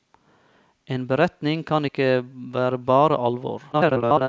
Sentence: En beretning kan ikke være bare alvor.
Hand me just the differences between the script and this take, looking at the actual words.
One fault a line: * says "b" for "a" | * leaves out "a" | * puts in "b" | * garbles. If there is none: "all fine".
* garbles